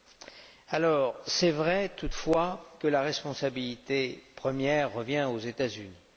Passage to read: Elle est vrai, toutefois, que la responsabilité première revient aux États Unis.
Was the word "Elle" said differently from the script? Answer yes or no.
yes